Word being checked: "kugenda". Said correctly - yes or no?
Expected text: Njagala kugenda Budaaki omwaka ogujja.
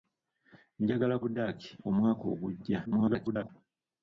no